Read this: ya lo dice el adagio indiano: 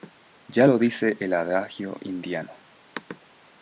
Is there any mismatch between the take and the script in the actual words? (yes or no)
no